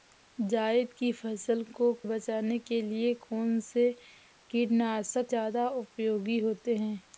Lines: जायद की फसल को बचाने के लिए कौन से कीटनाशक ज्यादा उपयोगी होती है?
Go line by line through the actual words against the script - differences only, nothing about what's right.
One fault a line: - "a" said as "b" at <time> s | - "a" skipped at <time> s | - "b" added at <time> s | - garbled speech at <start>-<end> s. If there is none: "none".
none